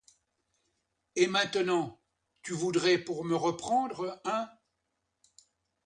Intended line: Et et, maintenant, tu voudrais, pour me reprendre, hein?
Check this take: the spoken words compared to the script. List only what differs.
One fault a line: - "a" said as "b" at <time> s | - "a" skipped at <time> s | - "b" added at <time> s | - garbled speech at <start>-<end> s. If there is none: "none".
- "et" skipped at 1.3 s